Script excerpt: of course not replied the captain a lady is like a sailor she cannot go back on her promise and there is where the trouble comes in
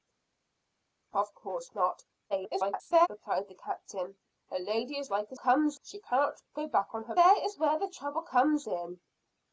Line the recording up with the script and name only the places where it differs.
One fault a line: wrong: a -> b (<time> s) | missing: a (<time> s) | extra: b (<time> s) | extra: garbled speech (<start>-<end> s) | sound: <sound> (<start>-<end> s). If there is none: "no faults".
extra: garbled speech (2.3-3.1 s)
wrong: sailor -> comes (5.3 s)
missing: promise and (7.1 s)